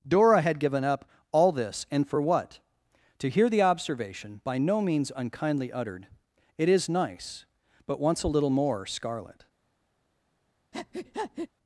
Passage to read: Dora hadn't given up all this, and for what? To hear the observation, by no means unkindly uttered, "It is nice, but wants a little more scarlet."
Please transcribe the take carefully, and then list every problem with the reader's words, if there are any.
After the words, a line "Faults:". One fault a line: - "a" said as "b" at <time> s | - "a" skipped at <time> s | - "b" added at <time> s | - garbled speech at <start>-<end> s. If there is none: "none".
Dora had given up all this, and for what? To hear the observation, by no means unkindly uttered, "It is nice, but wants a little more scarlet."
Faults:
- "hadn't" said as "had" at 0.4 s